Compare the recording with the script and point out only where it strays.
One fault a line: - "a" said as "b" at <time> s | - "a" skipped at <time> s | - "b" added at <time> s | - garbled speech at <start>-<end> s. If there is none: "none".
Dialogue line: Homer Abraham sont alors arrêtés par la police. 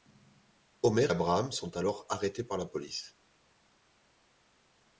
none